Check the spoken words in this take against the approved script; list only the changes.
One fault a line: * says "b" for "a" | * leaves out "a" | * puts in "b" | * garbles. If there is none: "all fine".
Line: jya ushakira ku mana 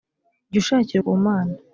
all fine